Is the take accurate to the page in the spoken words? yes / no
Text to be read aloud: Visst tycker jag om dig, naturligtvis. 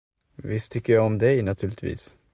yes